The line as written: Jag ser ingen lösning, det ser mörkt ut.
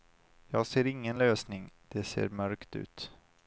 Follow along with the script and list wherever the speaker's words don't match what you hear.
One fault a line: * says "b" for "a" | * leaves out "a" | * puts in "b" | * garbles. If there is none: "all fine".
all fine